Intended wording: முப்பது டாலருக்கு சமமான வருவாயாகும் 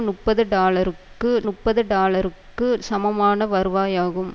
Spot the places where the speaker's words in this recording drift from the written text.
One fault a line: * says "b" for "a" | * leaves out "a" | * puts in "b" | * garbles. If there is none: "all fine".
* puts in "முப்பது டாலருக்கு"